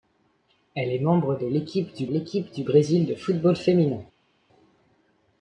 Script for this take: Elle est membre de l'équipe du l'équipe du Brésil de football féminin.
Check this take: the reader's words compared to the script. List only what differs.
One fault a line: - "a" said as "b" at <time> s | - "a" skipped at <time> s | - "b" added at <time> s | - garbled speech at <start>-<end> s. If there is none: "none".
none